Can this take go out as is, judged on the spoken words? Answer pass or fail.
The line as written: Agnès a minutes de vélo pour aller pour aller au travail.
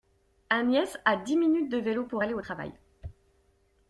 fail